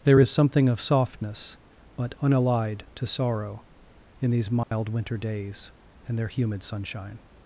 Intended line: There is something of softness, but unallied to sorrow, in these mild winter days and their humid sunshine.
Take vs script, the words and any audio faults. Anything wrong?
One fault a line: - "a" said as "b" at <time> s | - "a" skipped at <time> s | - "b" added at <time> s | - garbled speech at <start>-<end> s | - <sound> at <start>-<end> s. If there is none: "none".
- dropout at 4.6-4.7 s